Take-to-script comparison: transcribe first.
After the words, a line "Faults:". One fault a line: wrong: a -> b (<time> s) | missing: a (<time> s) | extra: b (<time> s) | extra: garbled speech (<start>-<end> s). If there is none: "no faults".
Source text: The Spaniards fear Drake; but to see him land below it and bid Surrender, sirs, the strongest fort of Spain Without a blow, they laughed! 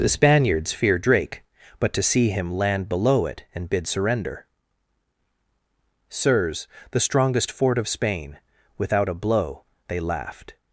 The Spaniards fear Drake; but to see him land below it and bid Surrender, sirs, the strongest fort of Spain Without a blow, they laughed!
Faults:
no faults